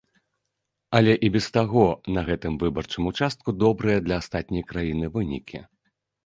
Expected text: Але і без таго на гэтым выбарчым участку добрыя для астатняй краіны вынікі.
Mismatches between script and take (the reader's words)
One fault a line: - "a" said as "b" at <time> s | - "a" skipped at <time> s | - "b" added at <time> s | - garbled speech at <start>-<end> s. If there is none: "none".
none